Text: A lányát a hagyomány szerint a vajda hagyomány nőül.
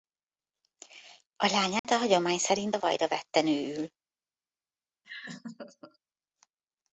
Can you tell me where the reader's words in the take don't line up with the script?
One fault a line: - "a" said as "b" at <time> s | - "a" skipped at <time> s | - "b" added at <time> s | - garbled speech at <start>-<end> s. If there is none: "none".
- "hagyomány" said as "vette" at 3.1 s